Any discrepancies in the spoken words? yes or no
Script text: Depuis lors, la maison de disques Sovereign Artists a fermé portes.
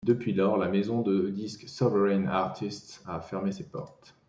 yes